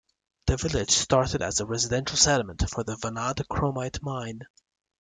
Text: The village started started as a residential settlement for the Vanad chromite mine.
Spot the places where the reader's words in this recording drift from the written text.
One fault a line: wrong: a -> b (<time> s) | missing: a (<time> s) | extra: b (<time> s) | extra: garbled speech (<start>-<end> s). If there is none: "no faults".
missing: started (1.4 s)